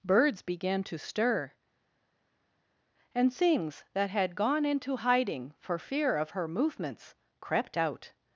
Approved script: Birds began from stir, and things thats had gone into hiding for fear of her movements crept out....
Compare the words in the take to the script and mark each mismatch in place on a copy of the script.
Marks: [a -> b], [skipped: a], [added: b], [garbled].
Birds began [from -> to] stir, and things [thats -> that] had gone into hiding for fear of her movements crept out....